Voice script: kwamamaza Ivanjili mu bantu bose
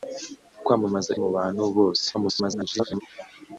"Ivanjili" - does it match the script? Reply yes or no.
no